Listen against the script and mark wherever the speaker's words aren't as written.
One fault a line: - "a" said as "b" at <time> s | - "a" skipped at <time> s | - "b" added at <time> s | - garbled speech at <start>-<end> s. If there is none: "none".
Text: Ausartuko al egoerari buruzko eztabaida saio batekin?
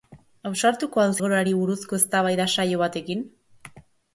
none